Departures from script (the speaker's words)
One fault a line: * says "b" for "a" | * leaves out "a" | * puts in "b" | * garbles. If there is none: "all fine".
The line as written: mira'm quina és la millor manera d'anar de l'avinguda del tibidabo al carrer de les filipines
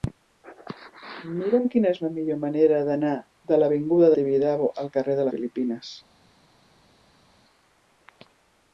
* leaves out "del"
* leaves out "les"